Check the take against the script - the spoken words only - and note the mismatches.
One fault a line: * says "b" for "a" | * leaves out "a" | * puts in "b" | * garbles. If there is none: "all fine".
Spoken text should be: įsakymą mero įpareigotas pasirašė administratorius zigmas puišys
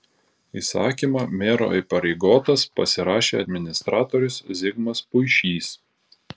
all fine